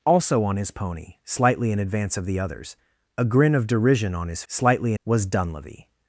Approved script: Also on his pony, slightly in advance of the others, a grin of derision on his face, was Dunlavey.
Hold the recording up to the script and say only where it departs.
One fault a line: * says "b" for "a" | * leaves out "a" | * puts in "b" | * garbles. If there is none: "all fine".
* says "slightly" for "face"